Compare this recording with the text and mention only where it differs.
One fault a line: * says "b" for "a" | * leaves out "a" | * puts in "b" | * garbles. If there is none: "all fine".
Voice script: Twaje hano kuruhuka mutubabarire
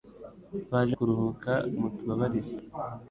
* leaves out "hano"